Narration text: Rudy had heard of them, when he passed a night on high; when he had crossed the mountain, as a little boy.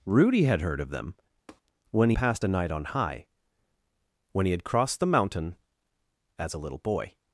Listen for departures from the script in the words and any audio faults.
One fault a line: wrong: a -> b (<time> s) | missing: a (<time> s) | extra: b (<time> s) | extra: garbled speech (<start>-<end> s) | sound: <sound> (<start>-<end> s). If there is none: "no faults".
sound: tap (1.5-1.6 s)